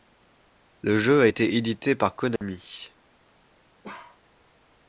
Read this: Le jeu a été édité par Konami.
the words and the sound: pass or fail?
fail